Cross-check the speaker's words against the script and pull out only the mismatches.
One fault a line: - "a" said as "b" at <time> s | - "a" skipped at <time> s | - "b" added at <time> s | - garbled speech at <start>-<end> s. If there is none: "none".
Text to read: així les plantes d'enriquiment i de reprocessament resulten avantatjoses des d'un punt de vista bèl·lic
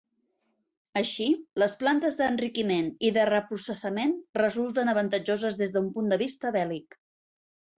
none